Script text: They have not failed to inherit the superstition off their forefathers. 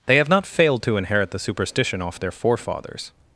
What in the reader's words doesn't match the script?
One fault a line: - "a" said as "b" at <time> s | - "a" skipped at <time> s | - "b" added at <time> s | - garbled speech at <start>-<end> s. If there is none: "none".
none